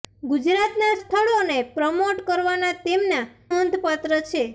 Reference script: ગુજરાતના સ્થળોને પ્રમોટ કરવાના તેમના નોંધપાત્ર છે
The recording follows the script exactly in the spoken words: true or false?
true